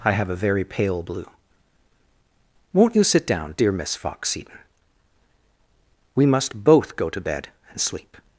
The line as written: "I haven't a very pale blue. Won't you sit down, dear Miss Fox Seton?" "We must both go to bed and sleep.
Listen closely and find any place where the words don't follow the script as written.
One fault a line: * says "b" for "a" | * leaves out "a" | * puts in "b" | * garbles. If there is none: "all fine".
* says "have" for "haven't"